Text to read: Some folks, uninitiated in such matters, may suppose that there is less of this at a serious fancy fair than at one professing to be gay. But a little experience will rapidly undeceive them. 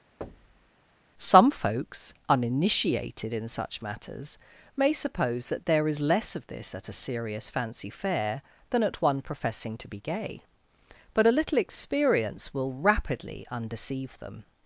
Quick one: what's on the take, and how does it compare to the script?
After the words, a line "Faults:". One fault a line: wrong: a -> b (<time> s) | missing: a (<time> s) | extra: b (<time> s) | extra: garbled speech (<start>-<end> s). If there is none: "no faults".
Some folks, uninitiated in such matters, may suppose that there is less of this at a serious fancy fair than at one professing to be gay. But a little experience will rapidly undeceive them.
Faults:
no faults